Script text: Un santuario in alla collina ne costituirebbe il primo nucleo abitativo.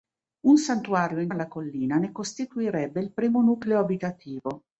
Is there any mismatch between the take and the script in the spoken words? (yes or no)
no